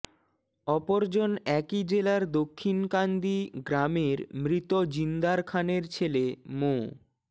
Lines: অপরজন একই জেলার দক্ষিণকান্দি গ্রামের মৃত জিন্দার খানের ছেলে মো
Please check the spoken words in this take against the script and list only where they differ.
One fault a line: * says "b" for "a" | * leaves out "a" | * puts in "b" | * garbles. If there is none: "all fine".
all fine